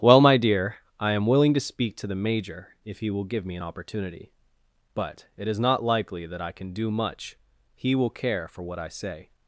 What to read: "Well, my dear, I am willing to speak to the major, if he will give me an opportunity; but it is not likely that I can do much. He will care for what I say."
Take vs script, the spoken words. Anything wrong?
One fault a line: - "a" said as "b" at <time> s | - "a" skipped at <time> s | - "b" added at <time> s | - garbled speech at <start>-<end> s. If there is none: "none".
none